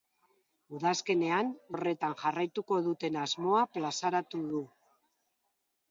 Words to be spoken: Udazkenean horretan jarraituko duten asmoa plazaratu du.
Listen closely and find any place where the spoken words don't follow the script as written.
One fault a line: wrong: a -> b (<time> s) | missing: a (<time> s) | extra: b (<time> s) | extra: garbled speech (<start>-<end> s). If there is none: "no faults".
no faults